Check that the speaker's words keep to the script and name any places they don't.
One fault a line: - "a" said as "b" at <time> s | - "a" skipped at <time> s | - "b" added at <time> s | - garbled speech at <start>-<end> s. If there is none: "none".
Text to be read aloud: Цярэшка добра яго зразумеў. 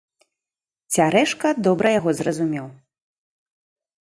none